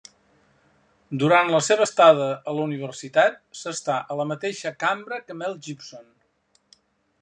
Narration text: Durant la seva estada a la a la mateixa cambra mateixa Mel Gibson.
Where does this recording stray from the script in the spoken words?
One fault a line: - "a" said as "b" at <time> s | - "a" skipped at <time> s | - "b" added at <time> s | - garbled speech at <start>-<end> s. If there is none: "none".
- "universitat s'està" added at 2.7 s
- "mateixa" said as "que" at 5.3 s